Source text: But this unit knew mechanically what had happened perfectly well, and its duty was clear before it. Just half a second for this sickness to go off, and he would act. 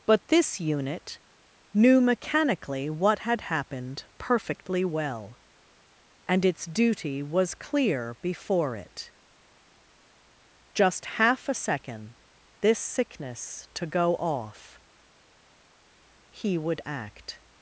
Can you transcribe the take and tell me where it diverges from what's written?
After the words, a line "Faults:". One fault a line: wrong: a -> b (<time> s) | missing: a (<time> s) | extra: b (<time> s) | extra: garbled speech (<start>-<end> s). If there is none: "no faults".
But this unit knew mechanically what had happened perfectly well, and its duty was clear before it. Just half a second this sickness to go off, he would act.
Faults:
missing: for (12.2 s)
missing: and (14.8 s)